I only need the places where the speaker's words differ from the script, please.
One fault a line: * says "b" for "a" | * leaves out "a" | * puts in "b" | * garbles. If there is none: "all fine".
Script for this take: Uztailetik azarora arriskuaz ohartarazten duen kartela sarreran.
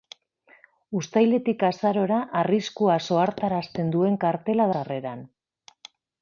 all fine